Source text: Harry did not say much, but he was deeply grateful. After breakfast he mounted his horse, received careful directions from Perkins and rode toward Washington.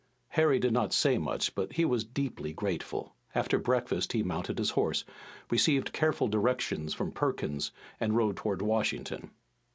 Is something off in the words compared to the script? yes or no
no